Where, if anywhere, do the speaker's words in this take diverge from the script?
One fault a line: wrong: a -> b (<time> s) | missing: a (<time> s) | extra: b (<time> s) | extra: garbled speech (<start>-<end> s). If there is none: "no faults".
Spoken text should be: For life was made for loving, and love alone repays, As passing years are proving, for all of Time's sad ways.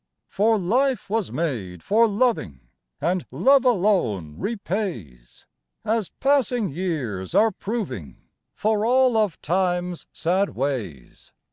no faults